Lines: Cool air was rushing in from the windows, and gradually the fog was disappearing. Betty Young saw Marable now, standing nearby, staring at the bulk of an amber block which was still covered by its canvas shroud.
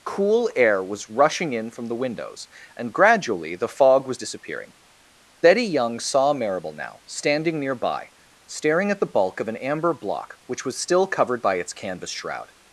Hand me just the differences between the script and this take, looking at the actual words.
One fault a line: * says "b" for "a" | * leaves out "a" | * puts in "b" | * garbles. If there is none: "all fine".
all fine